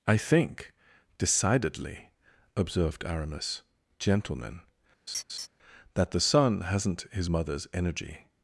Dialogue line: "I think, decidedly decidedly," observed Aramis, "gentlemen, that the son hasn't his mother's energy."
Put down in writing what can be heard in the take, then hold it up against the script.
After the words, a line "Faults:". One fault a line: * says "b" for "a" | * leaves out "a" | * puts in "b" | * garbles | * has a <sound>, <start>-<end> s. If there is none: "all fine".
"I think, decidedly," observed Aramis, "gentlemen, that the son hasn't his mother's energy."
Faults:
* leaves out "decidedly"
* has a laugh, 5.1-5.5 s